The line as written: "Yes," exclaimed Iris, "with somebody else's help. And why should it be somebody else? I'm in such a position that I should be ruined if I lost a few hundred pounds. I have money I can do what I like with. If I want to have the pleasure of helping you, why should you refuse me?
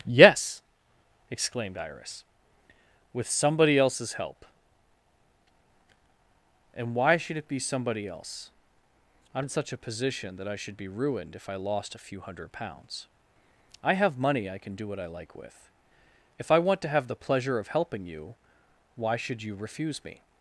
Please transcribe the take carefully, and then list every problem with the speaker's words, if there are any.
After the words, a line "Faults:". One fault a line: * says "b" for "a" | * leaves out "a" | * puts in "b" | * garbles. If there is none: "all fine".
"Yes," exclaimed Iris, "with somebody else's help. And why should it be somebody else? I'm in such a position that I should be ruined if I lost a few hundred pounds. I have money I can do what I like with. If I want to have the pleasure of helping you, why should you refuse me?
Faults:
all fine